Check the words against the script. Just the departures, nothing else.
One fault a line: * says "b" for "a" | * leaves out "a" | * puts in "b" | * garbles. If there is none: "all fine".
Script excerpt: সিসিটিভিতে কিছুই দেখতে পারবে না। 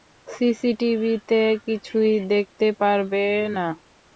all fine